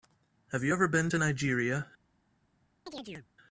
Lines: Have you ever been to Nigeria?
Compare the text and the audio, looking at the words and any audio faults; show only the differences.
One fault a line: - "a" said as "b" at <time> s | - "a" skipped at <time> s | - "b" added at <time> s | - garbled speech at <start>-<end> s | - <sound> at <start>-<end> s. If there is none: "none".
- chirp at 2.9-3.3 s